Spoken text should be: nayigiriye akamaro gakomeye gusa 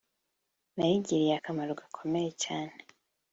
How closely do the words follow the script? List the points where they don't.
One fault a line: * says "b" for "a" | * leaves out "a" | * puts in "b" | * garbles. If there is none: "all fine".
* says "cyane" for "gusa"